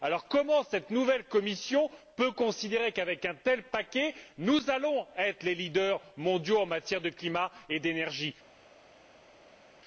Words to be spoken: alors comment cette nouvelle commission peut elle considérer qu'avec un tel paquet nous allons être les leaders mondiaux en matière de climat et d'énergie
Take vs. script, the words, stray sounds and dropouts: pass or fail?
pass